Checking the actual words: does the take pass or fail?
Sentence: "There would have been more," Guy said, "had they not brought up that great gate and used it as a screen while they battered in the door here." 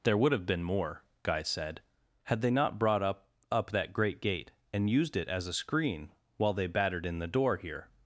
fail